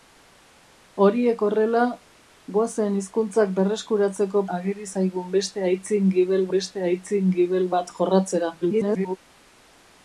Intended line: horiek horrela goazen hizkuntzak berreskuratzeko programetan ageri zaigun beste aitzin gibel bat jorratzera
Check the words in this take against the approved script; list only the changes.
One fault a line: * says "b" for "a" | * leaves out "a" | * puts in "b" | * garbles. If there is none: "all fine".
* leaves out "programetan"
* puts in "beste aitzin gibel"
* garbles